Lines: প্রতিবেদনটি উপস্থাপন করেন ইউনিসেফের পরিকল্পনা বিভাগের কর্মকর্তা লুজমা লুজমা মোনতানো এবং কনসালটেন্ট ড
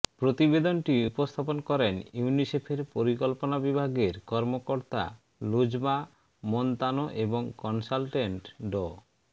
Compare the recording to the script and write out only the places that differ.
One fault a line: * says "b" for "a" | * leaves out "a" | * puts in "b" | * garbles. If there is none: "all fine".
* leaves out "লুজমা"